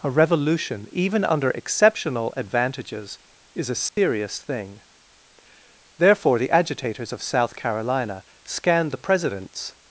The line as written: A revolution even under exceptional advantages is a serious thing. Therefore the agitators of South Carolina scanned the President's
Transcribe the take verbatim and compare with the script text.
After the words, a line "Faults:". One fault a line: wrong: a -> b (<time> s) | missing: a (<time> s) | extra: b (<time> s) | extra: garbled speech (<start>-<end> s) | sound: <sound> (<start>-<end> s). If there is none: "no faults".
A revolution even under exceptional advantages is a serious thing. Therefore the agitators of South Carolina scanned the President's
Faults:
sound: dropout (3.9-4.0 s)